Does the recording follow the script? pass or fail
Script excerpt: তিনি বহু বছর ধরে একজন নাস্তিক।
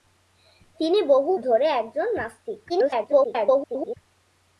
fail